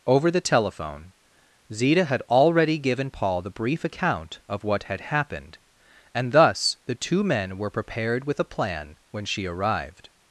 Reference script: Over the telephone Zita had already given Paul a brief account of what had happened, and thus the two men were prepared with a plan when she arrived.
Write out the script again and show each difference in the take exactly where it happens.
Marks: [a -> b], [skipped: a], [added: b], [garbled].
Over the telephone Zita had already given Paul [a -> the] brief account of what had happened, and thus the two men were prepared with a plan when she arrived.